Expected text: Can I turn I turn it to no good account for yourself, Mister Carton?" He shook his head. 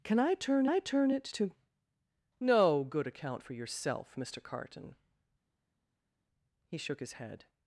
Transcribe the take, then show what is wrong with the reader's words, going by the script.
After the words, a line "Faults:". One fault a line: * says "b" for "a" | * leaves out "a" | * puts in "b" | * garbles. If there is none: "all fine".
Can I turn I turn it to no good account for yourself, Mister Carton?" He shook his head.
Faults:
all fine